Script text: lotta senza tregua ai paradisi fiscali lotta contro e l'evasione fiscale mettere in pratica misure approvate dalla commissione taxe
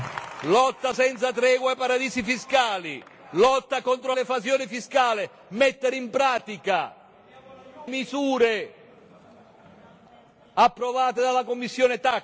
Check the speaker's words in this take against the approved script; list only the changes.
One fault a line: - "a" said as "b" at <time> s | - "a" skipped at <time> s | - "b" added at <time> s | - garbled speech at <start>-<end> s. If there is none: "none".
none